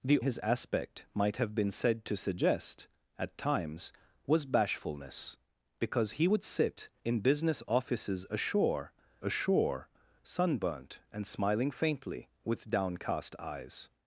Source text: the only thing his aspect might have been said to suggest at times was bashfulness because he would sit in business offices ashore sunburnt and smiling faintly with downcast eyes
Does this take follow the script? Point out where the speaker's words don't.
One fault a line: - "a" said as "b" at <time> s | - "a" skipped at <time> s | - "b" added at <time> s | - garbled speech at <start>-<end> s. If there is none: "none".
- "only thing" skipped at 0.2 s
- "ashore" added at 9.2 s